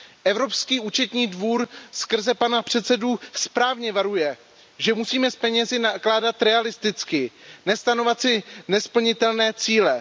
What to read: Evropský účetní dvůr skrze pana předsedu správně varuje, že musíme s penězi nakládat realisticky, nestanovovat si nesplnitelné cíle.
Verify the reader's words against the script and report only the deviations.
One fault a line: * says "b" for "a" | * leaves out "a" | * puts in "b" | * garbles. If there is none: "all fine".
all fine